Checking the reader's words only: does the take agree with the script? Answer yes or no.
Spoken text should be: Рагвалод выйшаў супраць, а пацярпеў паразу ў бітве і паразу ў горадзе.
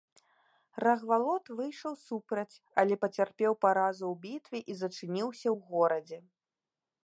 no